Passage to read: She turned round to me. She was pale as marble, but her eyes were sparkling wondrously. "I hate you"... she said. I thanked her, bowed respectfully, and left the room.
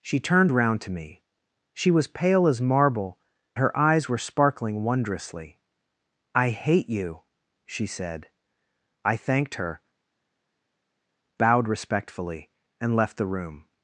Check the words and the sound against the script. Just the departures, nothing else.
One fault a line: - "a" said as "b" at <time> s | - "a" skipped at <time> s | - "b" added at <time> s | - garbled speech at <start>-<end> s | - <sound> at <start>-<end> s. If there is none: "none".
- "but" skipped at 3.2 s